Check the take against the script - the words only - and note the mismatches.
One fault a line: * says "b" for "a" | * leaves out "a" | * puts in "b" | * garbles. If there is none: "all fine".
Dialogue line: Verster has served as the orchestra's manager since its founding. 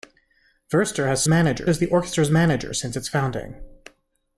* says "manager" for "served"